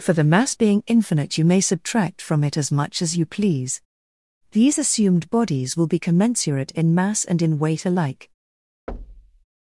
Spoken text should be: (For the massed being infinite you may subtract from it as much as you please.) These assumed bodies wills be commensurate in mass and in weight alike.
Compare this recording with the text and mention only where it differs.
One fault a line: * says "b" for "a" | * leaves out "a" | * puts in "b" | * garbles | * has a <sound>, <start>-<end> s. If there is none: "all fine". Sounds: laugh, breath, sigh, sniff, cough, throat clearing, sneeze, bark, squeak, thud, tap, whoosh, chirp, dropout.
* says "mass" for "massed"
* says "will" for "wills"
* has a thud, 8.9-9.4 s